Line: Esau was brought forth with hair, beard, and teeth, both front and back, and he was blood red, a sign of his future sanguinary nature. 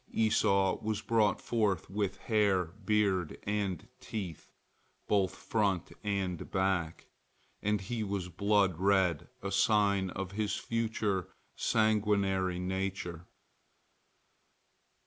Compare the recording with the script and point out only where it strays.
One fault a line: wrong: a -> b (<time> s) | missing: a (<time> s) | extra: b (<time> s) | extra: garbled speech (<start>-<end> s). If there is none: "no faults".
no faults